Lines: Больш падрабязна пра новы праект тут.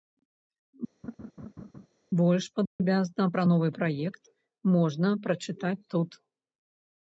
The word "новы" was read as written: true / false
true